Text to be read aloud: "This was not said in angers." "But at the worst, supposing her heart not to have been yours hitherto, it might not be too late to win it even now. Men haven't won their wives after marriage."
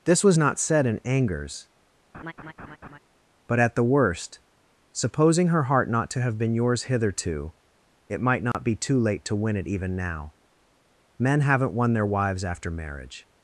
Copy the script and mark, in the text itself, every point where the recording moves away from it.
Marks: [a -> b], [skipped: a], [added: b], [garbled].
"This was not said in angers." "But at the worst, supposing her heart not to have been yours hitherto, it might not be too late to win it even now. Men haven't won their wives after marriage."